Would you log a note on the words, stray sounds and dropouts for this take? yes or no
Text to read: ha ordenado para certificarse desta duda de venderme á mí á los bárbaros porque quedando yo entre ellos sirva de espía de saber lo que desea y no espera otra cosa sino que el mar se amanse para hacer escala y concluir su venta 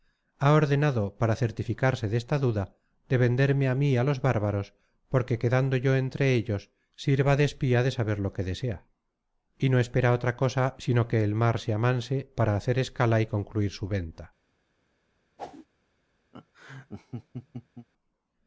yes